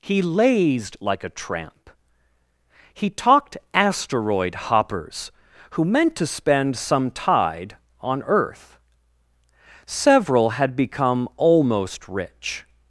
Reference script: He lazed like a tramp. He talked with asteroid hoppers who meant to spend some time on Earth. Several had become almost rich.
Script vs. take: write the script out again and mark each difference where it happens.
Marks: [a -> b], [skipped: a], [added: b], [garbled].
He lazed like a tramp. He talked [skipped: with] asteroid hoppers who meant to spend some [time -> tide] on Earth. Several had become almost rich.